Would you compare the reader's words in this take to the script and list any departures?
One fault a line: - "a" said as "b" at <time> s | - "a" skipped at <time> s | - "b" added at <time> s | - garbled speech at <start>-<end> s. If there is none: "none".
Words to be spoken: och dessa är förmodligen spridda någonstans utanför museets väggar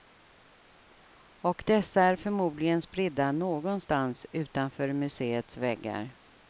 none